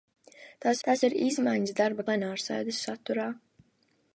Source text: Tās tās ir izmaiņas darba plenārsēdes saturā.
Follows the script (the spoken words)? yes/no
yes